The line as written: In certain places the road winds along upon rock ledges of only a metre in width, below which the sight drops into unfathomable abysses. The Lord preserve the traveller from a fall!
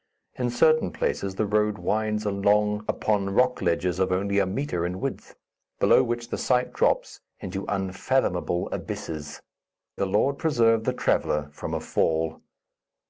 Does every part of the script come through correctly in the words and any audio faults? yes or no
yes